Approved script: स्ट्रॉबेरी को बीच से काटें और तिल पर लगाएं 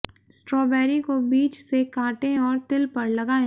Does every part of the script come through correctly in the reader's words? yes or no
yes